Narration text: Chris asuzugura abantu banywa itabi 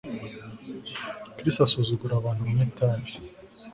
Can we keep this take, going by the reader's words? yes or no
yes